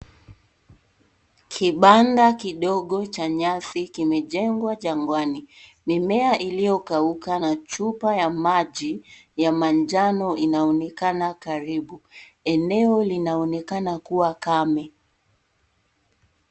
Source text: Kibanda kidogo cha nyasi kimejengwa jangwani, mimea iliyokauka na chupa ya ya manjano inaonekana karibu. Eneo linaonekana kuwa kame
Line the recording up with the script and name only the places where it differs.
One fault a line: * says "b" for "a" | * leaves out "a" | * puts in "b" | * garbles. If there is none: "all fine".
* puts in "maji"